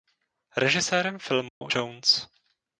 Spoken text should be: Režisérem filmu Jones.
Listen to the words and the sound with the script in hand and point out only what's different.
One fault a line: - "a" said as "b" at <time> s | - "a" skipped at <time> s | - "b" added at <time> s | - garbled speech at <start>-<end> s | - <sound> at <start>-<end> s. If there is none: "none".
- dropout at 1.5-1.6 s